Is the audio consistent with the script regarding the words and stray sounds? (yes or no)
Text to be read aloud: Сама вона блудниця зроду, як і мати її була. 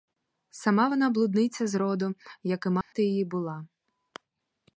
no